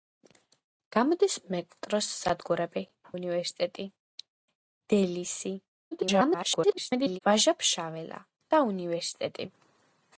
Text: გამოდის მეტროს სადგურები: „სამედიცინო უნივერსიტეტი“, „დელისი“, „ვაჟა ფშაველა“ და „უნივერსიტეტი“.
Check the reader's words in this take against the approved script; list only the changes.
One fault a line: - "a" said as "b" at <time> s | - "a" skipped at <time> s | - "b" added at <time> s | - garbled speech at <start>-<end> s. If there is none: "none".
- "სამედიცინო" skipped at 2.8 s
- garbled speech at 5.9-7.2 s